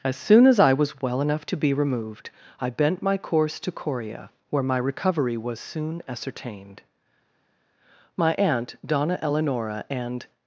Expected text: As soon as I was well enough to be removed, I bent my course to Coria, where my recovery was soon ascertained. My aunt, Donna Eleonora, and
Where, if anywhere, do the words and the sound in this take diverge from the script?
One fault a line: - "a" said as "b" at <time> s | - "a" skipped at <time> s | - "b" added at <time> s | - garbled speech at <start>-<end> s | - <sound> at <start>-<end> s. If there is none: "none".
none